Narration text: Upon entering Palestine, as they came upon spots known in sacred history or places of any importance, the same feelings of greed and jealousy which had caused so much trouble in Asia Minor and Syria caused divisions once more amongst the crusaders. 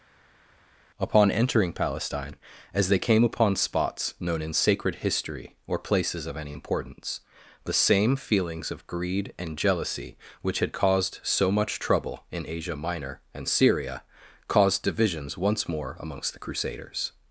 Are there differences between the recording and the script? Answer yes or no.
no